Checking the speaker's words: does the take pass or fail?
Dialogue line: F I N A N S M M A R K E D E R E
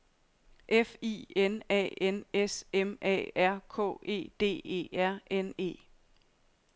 fail